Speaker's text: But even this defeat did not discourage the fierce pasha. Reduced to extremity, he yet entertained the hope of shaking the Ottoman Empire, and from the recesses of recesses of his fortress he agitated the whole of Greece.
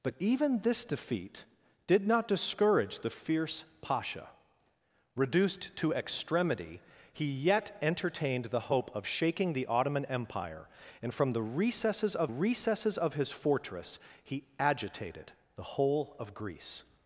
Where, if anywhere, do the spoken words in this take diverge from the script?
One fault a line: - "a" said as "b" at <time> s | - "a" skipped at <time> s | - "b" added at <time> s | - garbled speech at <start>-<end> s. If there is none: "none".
none